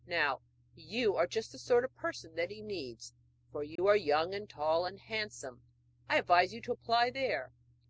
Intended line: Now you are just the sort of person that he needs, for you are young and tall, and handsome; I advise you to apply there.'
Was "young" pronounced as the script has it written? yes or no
yes